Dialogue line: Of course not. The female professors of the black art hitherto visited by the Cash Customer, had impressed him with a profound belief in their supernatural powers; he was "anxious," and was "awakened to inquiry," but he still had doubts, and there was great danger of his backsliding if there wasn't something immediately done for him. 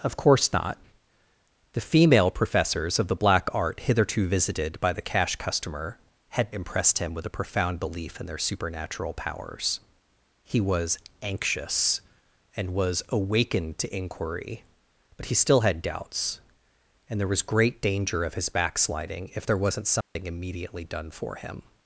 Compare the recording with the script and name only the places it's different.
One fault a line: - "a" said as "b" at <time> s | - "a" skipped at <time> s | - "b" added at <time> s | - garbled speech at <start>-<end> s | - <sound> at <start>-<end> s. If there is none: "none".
- dropout at 20.0-20.2 s